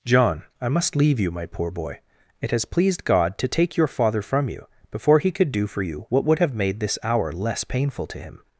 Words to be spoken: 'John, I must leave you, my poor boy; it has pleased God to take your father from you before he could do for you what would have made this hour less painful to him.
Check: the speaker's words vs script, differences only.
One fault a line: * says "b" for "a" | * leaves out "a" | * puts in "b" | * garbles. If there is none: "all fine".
all fine